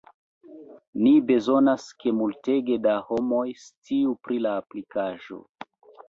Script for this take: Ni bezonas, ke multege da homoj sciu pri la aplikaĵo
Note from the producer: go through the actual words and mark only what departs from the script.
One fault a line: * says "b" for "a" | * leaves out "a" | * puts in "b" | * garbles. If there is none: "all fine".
all fine